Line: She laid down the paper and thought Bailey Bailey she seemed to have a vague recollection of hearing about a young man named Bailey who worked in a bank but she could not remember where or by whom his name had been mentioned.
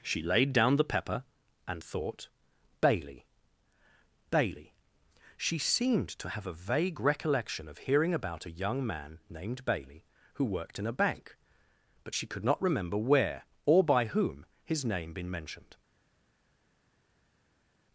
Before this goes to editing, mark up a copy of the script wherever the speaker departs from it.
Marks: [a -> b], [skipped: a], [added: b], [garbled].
She laid down the [paper -> pepper] and thought Bailey Bailey she seemed to have a vague recollection of hearing about a young man named Bailey who worked in a bank but she could not remember where or by whom his name [skipped: had] been mentioned.